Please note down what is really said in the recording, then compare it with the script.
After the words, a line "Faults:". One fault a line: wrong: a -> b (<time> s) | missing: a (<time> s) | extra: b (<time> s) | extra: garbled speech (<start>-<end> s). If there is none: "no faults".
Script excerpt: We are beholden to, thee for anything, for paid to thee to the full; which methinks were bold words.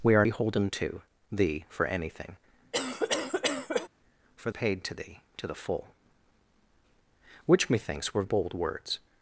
We are beholden to, thee for anything, for paid to thee to the full; which methinks were bold words.
Faults:
no faults